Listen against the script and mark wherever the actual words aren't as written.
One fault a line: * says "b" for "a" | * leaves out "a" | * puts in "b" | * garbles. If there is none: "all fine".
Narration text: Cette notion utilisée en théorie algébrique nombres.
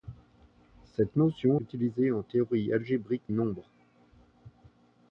all fine